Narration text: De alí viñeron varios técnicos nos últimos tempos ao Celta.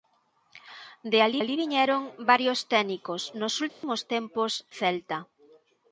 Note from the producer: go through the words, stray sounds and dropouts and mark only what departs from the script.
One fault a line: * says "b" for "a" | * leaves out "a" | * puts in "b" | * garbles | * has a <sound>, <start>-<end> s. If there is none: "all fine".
* puts in "alí"
* has a dropout, 3.7-3.8 s
* leaves out "ao"